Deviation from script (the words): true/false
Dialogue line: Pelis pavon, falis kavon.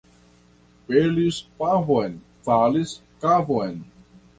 false